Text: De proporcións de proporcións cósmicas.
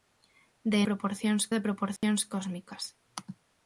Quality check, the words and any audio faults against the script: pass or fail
fail